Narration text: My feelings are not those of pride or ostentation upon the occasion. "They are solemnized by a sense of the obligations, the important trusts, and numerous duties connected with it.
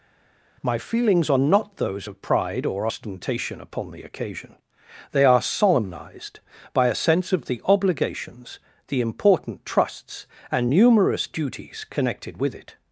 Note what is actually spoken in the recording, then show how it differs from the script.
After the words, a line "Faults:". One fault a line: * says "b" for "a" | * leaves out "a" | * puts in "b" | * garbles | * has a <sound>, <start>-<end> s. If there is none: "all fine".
My feelings are not those of pride or ostentation upon the occasion. "They are solemnized by a sense of the obligations, the important trusts, and numerous duties connected with it.
Faults:
all fine